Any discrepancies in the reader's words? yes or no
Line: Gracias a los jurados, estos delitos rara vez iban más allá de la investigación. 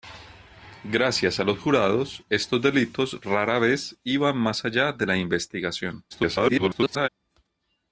yes